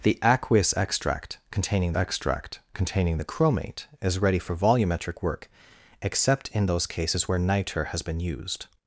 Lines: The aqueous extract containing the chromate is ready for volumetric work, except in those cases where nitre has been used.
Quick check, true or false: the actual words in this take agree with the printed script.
false